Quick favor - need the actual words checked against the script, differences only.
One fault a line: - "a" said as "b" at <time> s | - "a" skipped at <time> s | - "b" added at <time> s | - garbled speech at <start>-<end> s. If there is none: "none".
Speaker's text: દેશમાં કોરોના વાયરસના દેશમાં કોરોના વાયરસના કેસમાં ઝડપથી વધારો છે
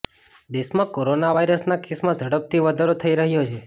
- "દેશમાં કોરોના વાયરસના" skipped at 1.8 s
- "થઈ રહ્યો" added at 3.0 s